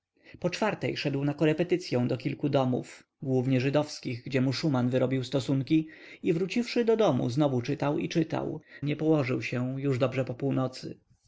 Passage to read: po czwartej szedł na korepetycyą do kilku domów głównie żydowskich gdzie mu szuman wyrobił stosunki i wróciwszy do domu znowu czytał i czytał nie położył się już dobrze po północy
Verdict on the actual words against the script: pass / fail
pass